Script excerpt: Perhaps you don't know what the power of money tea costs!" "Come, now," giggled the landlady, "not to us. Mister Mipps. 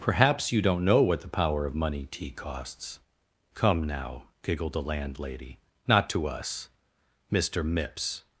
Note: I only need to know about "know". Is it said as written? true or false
true